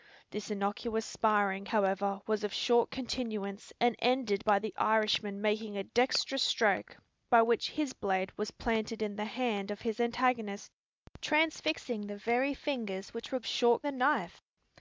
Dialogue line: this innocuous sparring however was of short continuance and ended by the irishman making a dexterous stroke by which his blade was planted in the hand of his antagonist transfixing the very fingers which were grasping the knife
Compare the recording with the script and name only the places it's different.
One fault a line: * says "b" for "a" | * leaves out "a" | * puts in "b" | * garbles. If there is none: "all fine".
* says "short" for "grasping"